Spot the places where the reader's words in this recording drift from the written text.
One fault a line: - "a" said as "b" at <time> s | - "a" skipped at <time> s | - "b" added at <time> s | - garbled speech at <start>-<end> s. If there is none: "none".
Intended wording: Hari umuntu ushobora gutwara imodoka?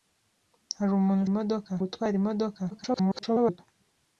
- "ushobora" said as "imodoka" at 1.3 s
- garbled speech at 2.7-3.6 s